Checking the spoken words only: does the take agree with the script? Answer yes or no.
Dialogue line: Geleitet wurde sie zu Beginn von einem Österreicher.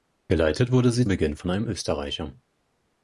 no